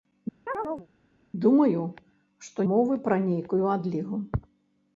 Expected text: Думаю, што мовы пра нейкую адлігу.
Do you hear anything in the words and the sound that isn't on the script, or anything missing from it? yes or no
yes